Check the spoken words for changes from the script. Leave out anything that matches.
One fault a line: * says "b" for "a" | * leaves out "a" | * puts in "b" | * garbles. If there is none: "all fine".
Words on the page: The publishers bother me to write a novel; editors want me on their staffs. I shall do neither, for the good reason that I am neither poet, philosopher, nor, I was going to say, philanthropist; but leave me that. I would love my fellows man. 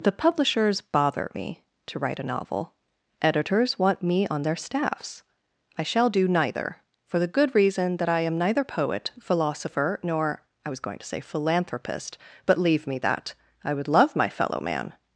* says "fellow" for "fellows"